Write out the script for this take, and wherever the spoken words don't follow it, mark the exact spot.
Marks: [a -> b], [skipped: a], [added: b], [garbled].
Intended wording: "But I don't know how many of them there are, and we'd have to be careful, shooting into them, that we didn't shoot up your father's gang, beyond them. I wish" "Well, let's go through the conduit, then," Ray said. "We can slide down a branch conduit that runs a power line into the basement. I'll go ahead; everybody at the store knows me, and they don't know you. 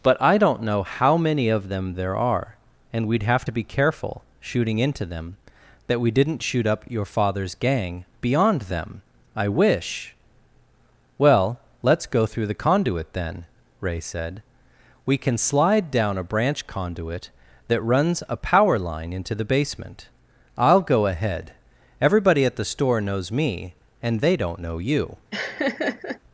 "But I don't know how many of them there are, and we'd have to be careful, shooting into them, that we didn't shoot up your father's gang, beyond them. I wish" "Well, let's go through the conduit, then," Ray said. "We can slide down a branch conduit that runs a power line into the basement. I'll go ahead; everybody at the store knows me, and they don't know you.